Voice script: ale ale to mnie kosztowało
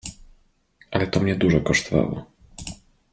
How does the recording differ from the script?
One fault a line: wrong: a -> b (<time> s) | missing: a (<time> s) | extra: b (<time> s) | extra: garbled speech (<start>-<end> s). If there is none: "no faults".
missing: ale (1.1 s)
extra: dużo (1.4 s)